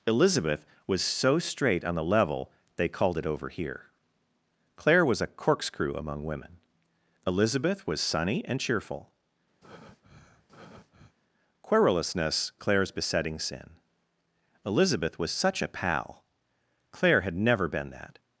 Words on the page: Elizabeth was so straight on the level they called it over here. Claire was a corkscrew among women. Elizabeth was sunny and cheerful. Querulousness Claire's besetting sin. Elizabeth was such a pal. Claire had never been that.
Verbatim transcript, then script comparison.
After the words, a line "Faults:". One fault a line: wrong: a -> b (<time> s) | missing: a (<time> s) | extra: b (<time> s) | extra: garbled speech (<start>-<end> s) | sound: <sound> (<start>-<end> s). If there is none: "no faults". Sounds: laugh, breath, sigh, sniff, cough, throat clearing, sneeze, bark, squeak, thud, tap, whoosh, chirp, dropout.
Elizabeth was so straight on the level they called it over here. Claire was a corkscrew among women. Elizabeth was sunny and cheerful. Querulousness Claire's besetting sin. Elizabeth was such a pal. Claire had never been that.
Faults:
sound: breath (9.6-11.2 s)